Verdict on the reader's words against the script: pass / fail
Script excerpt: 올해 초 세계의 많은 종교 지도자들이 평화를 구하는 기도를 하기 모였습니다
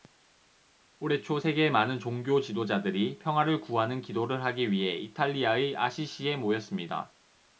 fail